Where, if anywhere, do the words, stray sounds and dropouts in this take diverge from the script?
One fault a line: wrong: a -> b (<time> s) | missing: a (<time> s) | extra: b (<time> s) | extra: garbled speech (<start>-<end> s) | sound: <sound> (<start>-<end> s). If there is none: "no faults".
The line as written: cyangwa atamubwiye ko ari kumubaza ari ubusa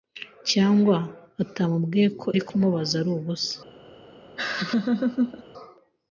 sound: laugh (4.4-5.4 s)